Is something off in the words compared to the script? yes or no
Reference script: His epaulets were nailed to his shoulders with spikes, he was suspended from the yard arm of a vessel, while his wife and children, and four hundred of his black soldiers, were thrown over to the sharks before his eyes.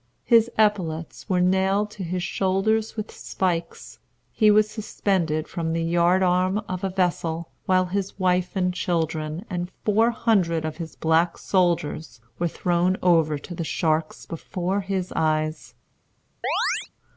no